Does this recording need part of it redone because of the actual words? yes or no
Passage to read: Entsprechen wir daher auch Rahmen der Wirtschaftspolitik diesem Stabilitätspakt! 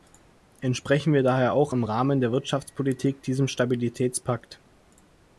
yes